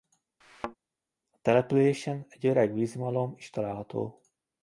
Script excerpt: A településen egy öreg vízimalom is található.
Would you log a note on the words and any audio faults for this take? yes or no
yes